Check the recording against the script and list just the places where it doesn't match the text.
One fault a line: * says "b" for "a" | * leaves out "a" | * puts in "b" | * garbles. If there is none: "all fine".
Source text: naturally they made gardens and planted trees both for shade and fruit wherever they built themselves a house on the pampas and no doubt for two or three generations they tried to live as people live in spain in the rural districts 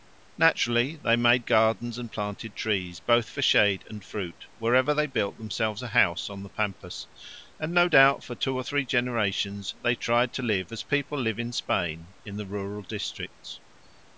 all fine